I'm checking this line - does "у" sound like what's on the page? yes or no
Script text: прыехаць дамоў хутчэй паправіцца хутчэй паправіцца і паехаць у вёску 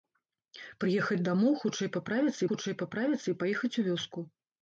yes